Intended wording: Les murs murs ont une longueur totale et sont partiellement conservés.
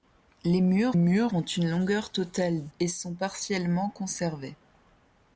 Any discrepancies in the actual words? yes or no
no